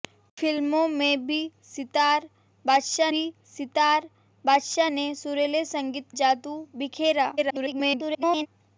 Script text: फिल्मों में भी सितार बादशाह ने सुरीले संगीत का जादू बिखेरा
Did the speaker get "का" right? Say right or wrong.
wrong